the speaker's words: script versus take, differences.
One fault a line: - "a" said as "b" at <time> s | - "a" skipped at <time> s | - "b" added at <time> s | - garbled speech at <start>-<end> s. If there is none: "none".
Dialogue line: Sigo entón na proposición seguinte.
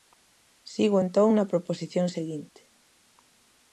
none